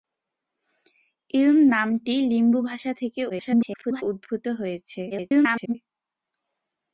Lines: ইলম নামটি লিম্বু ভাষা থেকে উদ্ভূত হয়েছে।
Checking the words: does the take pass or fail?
fail